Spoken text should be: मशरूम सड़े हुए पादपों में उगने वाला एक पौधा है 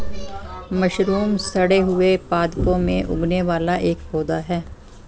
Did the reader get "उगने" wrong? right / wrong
right